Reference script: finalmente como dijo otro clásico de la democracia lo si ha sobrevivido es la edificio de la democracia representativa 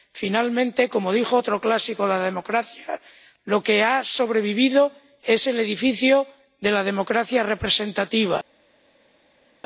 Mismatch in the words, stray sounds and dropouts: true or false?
true